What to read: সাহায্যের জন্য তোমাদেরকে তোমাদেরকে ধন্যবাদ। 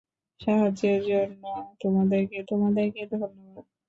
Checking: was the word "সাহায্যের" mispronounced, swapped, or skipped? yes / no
no